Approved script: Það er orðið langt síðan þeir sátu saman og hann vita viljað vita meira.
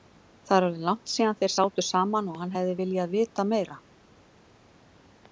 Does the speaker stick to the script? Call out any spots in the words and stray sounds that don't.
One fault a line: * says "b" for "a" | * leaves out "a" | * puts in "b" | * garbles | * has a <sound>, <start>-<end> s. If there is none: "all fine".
* says "hefði" for "vita"